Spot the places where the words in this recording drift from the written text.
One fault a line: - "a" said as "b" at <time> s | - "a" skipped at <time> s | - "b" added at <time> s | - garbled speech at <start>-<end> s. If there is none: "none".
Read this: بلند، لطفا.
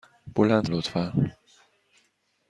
none